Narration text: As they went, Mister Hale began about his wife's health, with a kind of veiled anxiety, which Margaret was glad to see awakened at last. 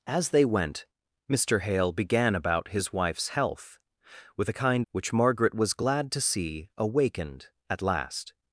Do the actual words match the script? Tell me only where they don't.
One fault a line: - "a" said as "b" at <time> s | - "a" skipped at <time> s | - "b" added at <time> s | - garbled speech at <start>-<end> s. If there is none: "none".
- "of veiled anxiety" skipped at 4.9 s